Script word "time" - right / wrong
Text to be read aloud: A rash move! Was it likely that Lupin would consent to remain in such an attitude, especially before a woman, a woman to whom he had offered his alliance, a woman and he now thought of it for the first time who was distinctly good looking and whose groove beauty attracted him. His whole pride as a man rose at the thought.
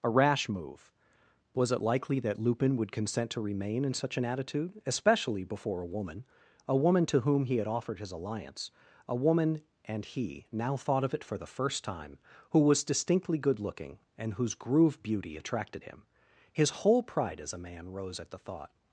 right